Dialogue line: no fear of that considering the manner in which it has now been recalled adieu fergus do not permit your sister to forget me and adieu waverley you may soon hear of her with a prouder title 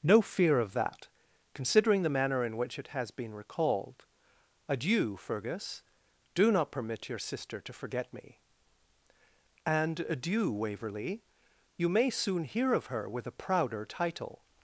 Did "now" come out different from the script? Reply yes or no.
yes